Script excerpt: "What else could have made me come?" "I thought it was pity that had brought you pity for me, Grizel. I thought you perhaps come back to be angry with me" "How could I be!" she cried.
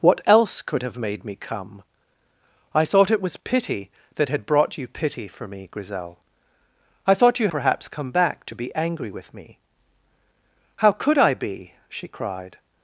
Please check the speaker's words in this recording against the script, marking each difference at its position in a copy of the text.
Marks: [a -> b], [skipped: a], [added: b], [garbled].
"What else could have made me come?" "I thought it was pity that had brought you pity for me, Grizel. I thought you perhaps come back to be angry with me" "How could I be!" she cried.